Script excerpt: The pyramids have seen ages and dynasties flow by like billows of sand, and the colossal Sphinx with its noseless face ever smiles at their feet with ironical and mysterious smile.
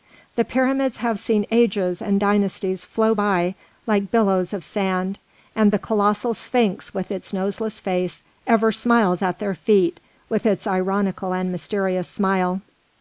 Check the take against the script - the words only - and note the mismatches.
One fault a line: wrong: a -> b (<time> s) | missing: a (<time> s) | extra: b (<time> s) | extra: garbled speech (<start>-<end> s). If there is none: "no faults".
extra: its (10.5 s)